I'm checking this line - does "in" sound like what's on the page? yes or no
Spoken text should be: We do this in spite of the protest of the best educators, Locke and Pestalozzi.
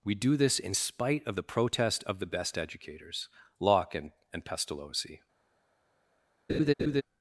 yes